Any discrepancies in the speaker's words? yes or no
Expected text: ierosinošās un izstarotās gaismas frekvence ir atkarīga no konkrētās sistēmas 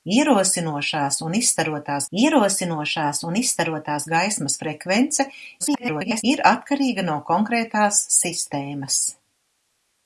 yes